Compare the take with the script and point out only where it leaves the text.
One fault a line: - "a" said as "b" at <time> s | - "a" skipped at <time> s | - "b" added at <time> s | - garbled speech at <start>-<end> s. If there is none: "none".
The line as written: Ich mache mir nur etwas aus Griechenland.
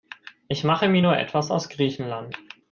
none